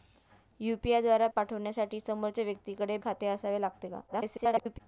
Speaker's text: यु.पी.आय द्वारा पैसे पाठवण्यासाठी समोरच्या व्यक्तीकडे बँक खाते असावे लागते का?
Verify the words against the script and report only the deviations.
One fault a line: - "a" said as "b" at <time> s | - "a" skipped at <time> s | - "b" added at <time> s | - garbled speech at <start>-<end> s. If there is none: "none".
- "पैसे" skipped at 1.3 s
- "बँक" skipped at 3.0 s
- garbled speech at 4.1-4.8 s